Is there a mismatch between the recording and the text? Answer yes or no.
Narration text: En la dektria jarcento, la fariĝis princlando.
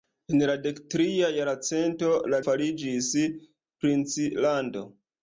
no